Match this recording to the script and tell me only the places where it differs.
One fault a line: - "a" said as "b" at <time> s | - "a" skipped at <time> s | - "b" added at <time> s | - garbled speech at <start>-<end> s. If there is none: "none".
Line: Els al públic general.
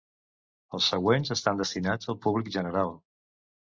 - "següents estan destinats" added at 0.9 s